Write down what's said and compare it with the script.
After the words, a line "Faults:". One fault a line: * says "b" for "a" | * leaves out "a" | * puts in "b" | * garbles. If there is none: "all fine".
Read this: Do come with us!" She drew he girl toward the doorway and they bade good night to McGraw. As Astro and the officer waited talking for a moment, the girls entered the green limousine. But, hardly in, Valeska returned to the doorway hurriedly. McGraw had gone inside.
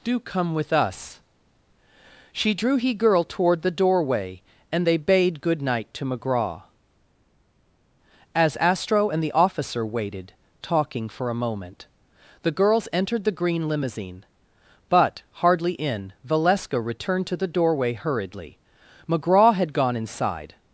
Do come with us!" She drew he girl toward the doorway and they bade good night to McGraw. As Astro and the officer waited talking for a moment, the girls entered the green limousine. But, hardly in, Valeska returned to the doorway hurriedly. McGraw had gone inside.
Faults:
all fine